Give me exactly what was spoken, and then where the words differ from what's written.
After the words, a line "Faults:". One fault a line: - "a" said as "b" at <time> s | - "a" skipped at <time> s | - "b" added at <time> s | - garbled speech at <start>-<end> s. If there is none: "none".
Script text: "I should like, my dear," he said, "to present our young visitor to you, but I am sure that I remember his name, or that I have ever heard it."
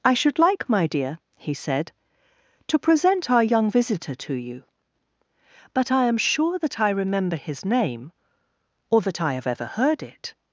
"I should like, my dear," he said, "to present our young visitor to you, but I am sure that I remember his name, or that I have ever heard it."
Faults:
none